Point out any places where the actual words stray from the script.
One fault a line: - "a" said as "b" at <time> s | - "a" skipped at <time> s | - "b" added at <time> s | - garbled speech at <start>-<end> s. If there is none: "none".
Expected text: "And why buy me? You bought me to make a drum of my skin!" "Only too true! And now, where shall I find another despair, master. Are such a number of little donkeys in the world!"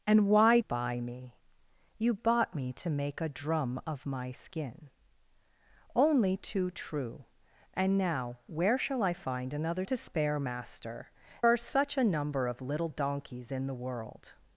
none